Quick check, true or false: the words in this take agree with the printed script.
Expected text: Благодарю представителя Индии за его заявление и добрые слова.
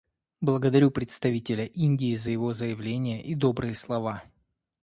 true